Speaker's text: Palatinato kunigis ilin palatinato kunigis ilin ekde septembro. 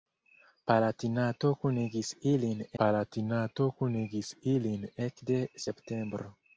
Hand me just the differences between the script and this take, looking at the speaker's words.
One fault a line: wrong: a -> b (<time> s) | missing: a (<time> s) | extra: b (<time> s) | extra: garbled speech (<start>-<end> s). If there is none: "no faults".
no faults